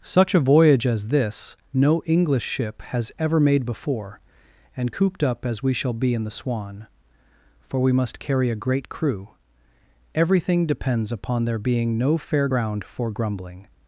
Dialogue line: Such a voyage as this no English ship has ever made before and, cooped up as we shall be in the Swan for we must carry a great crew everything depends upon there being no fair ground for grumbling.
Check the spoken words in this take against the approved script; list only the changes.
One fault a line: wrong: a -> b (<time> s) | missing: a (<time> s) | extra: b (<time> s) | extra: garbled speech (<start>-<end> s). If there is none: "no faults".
no faults